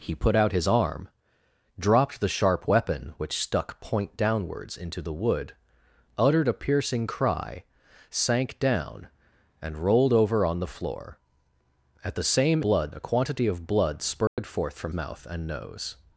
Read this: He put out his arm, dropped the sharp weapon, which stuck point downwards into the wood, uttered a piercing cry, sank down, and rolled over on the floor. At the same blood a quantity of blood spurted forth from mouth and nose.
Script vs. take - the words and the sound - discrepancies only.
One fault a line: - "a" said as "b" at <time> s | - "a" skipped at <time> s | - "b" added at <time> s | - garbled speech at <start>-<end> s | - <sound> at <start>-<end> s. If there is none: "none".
- dropout at 14.3-14.4 s